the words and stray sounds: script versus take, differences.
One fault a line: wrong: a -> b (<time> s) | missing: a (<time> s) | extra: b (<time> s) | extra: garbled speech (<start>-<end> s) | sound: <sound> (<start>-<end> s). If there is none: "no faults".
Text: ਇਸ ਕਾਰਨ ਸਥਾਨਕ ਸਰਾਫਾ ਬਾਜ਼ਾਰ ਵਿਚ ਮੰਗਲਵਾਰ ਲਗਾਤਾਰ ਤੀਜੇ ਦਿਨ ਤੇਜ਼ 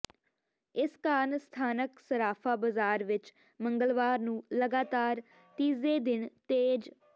extra: ਨੂੰ (4.2 s)